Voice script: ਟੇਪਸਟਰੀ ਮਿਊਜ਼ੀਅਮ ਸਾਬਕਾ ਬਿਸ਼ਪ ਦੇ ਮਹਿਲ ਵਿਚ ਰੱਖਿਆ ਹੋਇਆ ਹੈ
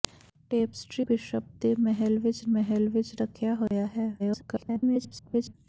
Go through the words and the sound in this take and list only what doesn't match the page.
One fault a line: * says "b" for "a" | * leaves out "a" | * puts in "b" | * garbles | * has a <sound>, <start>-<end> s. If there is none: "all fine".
* says "ਬਿਸ਼ਪ ਦੇ ਮਹਿਲ ਵਿਚ" for "ਮਿਊਜ਼ੀਅਮ ਸਾਬਕਾ ਬਿਸ਼ਪ ਦੇ"
* has a dropout, 3.7-3.7 s
* garbles